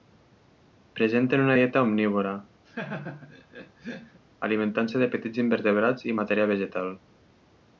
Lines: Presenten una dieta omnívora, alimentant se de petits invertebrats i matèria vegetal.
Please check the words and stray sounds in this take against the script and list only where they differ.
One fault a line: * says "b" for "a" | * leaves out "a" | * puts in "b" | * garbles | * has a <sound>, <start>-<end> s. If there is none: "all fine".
* has a laugh, 2.6-4.2 s